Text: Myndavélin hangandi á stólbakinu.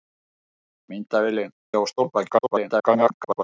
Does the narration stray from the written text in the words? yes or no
yes